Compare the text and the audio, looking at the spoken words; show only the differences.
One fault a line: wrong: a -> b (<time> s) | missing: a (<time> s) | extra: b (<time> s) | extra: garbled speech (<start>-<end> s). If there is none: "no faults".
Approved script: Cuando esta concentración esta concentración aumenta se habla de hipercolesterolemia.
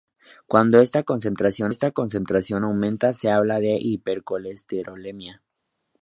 no faults